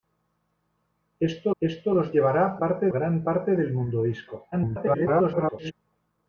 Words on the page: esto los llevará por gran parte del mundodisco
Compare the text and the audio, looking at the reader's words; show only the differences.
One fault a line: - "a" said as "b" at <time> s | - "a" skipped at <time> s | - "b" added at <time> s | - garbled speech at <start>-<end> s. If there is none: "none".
- "esto" added at 1.6 s
- "por" said as "parte" at 2.6 s
- garbled speech at 4.5-5.7 s